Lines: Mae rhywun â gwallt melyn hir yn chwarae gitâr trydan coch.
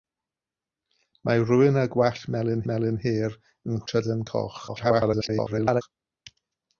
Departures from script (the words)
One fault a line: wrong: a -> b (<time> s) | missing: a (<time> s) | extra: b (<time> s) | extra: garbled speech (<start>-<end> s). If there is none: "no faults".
extra: melyn (2.7 s)
missing: chwarae gitâr (3.8 s)
extra: garbled speech (4.7-5.8 s)